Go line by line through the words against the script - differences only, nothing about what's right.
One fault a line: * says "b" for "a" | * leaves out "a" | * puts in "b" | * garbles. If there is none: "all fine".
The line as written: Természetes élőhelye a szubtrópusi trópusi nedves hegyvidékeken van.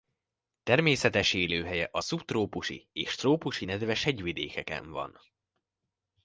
* puts in "és"